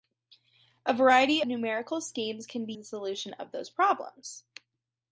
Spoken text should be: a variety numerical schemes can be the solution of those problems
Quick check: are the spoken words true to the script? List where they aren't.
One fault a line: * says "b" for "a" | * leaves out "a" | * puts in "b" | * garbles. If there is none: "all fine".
all fine